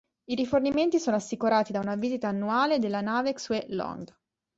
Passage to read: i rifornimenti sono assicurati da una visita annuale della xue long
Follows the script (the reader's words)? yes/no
no